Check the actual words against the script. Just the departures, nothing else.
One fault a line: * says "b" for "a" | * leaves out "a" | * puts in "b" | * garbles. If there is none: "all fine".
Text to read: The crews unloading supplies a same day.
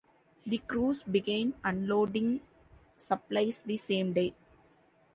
* puts in "began"
* says "the" for "a"